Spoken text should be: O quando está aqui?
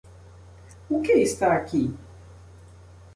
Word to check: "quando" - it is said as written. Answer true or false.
false